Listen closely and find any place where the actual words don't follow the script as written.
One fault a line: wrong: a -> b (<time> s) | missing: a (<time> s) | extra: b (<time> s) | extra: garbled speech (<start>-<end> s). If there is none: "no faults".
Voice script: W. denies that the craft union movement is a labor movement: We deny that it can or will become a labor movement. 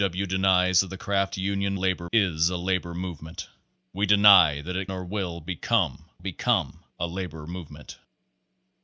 wrong: movement -> labor (1.7 s)
missing: can (4.9 s)
extra: become (6.2 s)